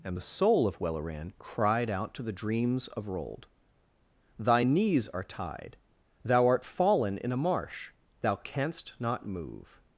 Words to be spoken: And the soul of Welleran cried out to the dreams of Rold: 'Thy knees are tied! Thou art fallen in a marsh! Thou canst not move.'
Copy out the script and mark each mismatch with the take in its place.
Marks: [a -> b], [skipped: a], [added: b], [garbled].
And the soul of Welleran cried out to the dreams of Rold: 'Thy knees are tied! Thou art fallen in a marsh! Thou canst not move.'